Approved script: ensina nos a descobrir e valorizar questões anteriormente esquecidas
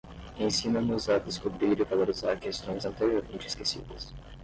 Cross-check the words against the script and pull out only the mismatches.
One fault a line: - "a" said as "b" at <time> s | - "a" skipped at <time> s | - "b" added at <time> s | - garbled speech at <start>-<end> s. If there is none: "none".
none